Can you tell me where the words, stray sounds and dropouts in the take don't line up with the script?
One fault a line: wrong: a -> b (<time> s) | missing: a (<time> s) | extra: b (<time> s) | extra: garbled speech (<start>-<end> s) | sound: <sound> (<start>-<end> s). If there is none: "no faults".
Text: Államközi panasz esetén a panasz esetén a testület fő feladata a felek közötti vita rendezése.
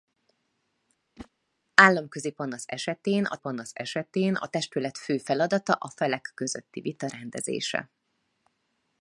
sound: whoosh (1.2-1.3 s)